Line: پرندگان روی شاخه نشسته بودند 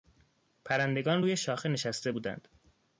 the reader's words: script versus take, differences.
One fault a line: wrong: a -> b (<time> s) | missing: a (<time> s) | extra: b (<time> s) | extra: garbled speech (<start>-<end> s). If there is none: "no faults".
no faults